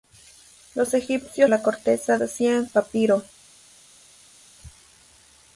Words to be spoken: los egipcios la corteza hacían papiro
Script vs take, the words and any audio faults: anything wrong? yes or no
no